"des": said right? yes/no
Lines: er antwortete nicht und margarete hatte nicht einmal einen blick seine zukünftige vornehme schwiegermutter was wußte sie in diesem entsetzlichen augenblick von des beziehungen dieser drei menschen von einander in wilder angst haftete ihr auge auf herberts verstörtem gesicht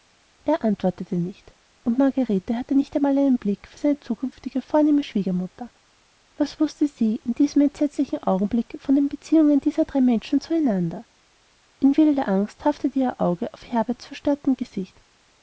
no